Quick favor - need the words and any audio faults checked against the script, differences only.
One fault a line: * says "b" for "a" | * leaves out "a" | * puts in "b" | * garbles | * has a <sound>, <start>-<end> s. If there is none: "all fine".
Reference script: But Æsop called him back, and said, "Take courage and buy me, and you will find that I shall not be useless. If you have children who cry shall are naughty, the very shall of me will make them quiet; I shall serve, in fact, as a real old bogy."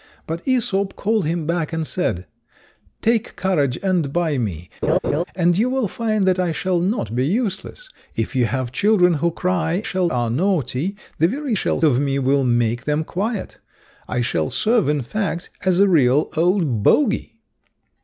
* has a laugh, 4.8-5.2 s